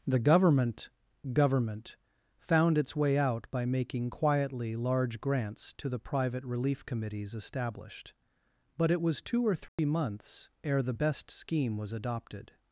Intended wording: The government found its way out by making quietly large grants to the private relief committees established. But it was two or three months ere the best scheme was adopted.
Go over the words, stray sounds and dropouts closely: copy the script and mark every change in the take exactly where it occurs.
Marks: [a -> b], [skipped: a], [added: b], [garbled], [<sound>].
The government [added: government] found its way out by making quietly large grants to the private relief committees established. But it was two or three [dropout] months ere the best scheme was adopted.